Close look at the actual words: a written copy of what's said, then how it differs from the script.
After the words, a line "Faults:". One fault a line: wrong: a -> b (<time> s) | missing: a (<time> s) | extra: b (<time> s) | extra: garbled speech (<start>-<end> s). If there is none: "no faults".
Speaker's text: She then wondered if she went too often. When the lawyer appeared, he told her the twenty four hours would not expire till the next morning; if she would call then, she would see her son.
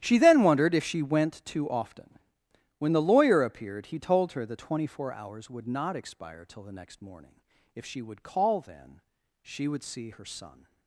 She then wondered if she went too often. When the lawyer appeared, he told her the twenty four hours would not expire till the next morning; if she would call then, she would see her son.
Faults:
no faults